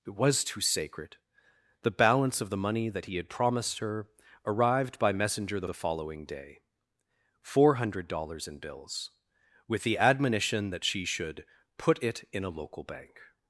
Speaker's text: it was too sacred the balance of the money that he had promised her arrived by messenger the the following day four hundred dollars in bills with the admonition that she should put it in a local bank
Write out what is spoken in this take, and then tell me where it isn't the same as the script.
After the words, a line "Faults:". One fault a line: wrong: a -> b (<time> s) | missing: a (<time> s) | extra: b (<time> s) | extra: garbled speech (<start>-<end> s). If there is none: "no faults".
it was too sacred the balance of the money that he had promised her arrived by messenger the the following day four hundred dollars in bills with the admonition that she should put it in a local bank
Faults:
no faults